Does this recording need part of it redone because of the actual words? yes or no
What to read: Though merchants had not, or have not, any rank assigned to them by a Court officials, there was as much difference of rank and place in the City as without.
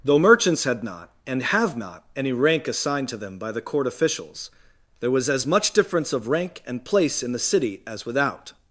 yes